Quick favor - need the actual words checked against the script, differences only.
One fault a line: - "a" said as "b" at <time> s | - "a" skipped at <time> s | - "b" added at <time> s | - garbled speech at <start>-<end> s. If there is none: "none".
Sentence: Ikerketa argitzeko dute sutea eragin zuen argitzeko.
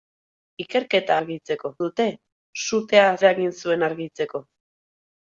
none